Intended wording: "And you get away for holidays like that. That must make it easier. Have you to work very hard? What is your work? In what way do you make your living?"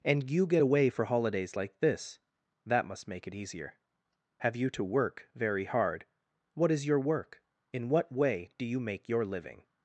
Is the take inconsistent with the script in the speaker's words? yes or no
yes